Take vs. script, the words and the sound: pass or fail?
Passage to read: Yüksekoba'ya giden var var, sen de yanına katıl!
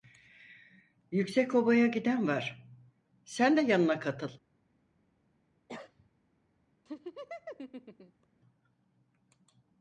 fail